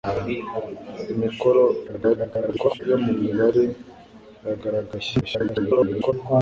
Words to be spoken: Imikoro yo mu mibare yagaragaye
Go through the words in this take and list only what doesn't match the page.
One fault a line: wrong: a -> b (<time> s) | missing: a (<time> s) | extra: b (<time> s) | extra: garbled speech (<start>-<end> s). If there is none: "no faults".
extra: garbled speech (1.9-2.8 s)
extra: garbled speech (5.2-6.1 s)